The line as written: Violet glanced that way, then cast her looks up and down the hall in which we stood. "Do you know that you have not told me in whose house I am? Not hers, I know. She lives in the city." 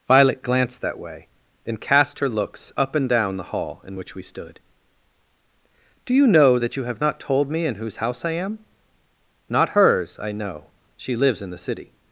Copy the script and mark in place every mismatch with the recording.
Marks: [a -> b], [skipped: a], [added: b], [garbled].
Violet glanced that way, then cast her looks up and down the hall in which we stood. "Do you know that you have not told me in whose house I am? Not hers, I know. She lives in the city."